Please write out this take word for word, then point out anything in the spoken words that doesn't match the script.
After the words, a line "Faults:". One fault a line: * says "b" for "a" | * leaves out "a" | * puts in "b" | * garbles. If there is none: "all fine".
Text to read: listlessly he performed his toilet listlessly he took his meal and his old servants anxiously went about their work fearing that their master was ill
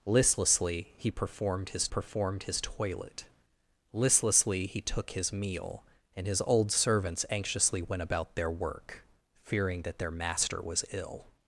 listlessly he performed his performed his toilet listlessly he took his meal and his old servants anxiously went about their work fearing that their master was ill
Faults:
* puts in "performed his"